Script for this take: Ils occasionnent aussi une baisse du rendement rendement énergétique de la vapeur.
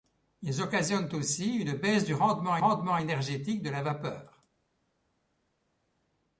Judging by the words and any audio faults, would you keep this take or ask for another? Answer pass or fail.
pass